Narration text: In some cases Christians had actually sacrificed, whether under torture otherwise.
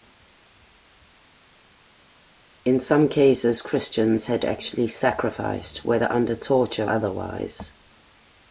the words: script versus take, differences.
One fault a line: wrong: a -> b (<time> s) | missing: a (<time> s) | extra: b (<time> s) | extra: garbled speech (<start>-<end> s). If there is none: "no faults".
no faults